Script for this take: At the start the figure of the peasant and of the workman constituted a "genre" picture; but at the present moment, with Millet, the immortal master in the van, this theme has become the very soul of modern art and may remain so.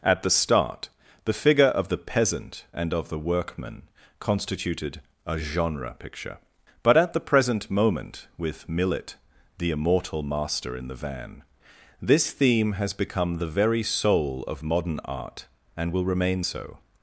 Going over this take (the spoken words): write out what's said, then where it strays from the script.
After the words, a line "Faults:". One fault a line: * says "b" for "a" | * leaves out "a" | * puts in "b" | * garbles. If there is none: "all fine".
At the start the figure of the peasant and of the workman constituted a "genre" picture; but at the present moment, with Millet, the immortal master in the van, this theme has become the very soul of modern art and will remain so.
Faults:
* says "will" for "may"